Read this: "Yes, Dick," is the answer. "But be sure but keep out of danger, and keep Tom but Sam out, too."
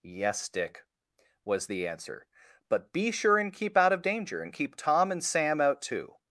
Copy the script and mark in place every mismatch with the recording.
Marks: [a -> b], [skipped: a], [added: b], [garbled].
"Yes, Dick," [is -> was] the answer. "But be sure [but -> and] keep out of danger, and keep Tom [but -> and] Sam out, too."